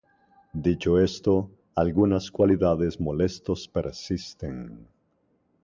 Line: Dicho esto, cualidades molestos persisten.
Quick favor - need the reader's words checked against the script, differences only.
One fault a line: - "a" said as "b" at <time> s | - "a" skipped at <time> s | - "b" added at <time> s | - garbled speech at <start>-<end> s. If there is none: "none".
- "algunas" added at 1.8 s